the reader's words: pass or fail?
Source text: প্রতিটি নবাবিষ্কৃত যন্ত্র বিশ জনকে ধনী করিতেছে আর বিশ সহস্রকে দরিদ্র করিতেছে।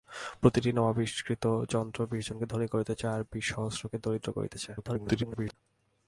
fail